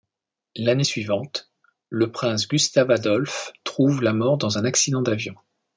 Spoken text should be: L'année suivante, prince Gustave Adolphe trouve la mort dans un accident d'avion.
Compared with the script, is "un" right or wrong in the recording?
right